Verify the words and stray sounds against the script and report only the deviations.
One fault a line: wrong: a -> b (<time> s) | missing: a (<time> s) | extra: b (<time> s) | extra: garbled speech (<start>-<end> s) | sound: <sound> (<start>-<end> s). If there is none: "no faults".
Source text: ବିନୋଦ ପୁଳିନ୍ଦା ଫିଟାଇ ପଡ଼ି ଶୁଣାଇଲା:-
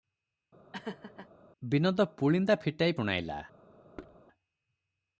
sound: laugh (0.7-1.3 s)
missing: ପଡ଼ି (3.0 s)
sound: thud (4.0-4.2 s)